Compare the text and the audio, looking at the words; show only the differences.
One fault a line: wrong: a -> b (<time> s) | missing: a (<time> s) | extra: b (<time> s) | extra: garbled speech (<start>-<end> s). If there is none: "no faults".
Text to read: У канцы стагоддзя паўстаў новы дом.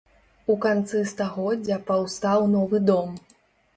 no faults